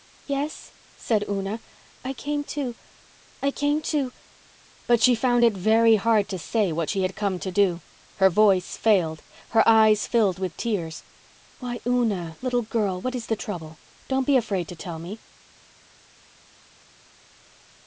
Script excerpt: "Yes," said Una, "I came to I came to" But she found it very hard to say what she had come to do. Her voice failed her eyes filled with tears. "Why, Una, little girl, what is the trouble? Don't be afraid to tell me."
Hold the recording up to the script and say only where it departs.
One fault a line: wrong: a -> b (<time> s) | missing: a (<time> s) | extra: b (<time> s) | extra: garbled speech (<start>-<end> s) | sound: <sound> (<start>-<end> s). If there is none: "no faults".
no faults